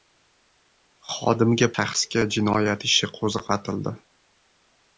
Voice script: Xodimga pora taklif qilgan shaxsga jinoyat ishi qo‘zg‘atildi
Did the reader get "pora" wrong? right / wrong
wrong